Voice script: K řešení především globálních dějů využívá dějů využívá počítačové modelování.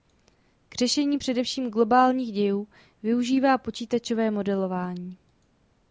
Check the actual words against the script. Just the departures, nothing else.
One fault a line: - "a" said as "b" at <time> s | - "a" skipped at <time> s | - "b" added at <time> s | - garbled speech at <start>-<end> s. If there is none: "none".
- "dějů využívá" skipped at 3.6 s